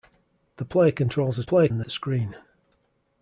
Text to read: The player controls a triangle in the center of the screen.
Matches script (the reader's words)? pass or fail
fail